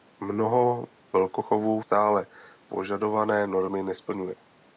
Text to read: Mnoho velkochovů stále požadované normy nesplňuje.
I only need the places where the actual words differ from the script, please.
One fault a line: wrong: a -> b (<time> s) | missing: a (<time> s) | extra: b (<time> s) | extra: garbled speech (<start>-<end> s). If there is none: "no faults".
no faults